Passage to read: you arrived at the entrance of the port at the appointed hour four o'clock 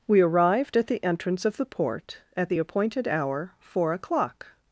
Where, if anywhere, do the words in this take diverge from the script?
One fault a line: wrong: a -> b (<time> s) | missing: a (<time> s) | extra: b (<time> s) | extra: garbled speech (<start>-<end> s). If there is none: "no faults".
wrong: you -> we (0.1 s)